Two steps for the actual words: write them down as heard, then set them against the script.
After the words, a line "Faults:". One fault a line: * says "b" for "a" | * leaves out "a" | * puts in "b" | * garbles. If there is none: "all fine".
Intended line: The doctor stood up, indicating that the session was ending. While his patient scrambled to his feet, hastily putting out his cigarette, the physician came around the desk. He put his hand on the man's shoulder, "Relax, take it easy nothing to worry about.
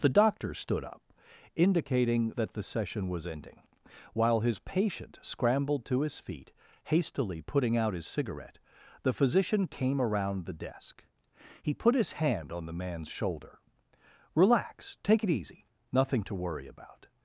The doctor stood up, indicating that the session was ending. While his patient scrambled to his feet, hastily putting out his cigarette, the physician came around the desk. He put his hand on the man's shoulder, "Relax, take it easy nothing to worry about.
Faults:
all fine